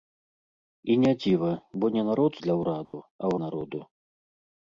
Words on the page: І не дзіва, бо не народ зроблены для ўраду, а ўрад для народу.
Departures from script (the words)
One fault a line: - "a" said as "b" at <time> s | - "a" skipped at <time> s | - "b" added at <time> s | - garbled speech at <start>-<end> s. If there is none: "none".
- "зроблены" skipped at 2.4 s
- "ўрад для" skipped at 3.4 s